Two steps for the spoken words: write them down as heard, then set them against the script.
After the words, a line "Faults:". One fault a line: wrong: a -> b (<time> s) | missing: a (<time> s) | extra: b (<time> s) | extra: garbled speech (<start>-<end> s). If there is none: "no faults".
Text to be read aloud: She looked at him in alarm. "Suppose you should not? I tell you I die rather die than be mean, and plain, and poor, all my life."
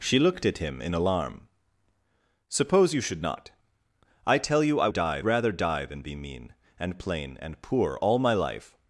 She looked at him in alarm. "Suppose you should not? I tell you I die rather die than be mean, and plain, and poor, all my life."
Faults:
no faults